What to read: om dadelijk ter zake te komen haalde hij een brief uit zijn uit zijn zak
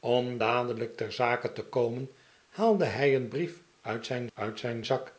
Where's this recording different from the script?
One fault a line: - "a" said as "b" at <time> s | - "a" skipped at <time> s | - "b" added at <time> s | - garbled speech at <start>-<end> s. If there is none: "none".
none